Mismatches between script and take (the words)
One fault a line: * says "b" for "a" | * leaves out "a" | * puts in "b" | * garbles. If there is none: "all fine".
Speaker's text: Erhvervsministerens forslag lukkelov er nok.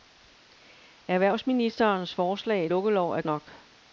all fine